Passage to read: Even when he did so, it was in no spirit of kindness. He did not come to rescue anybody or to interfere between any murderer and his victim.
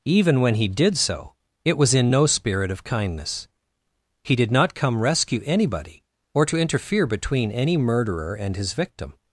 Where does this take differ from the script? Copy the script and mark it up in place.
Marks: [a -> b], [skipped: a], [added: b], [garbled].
Even when he did so, it was in no spirit of kindness. He did not come [skipped: to] rescue anybody or to interfere between any murderer and his victim.